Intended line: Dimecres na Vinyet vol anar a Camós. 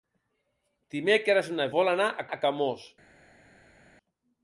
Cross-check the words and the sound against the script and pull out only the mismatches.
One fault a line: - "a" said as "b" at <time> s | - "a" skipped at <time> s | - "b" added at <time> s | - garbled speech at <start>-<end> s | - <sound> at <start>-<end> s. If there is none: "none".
- "Vinyet" skipped at 1.7 s
- "a" added at 2.3 s